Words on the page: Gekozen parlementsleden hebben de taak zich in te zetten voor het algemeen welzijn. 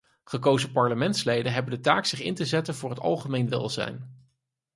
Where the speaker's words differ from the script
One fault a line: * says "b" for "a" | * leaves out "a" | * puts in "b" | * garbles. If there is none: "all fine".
all fine